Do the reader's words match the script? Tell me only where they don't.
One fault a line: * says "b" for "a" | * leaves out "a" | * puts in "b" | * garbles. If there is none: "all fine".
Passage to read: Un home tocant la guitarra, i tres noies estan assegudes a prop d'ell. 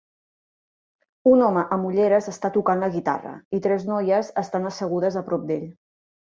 * puts in "amb ulleres està"